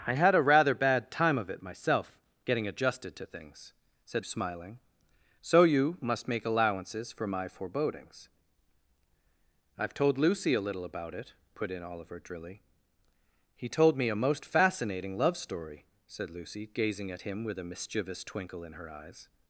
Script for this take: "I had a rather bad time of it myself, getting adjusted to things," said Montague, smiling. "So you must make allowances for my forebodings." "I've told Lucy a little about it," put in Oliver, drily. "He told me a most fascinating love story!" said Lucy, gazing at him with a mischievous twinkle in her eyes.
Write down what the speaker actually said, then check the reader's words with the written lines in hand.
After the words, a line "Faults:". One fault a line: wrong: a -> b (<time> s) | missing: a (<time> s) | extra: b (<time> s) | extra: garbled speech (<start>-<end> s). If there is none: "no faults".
"I had a rather bad time of it myself, getting adjusted to things," said Smiling. "So you must make allowances for my forebodings." "I've told Lucy a little about it," put in Oliver, drily. "He told me a most fascinating love story!" said Lucy, gazing at him with a mischievous twinkle in her eyes.
Faults:
missing: Montague (4.2 s)